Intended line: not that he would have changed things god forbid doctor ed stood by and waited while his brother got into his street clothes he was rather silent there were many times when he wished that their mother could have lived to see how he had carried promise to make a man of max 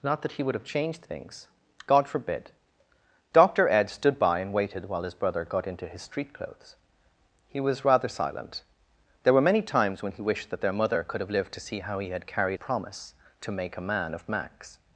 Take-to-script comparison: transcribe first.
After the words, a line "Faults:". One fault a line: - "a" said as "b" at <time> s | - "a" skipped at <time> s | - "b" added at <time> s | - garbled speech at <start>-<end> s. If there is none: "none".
not that he would have changed things god forbid doctor ed stood by and waited while his brother got into his street clothes he was rather silent there were many times when he wished that their mother could have lived to see how he had carried promise to make a man of max
Faults:
none